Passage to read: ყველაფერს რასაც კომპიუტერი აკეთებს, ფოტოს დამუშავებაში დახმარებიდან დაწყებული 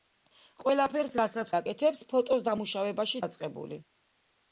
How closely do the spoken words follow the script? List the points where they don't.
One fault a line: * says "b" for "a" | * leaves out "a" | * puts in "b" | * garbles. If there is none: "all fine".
* leaves out "კომპიუტერი"
* leaves out "დახმარებიდან"